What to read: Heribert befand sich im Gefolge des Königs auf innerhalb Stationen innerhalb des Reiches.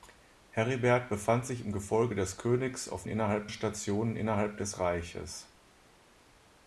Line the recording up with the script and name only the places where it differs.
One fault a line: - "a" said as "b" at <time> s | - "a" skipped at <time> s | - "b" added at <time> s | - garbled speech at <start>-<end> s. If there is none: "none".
none